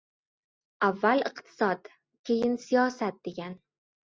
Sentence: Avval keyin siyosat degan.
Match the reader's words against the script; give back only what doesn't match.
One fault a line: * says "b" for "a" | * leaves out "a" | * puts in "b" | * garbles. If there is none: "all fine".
* puts in "iqtisod"